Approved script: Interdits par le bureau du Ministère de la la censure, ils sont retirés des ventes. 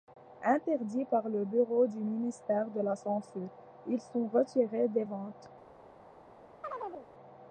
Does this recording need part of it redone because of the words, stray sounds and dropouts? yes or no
yes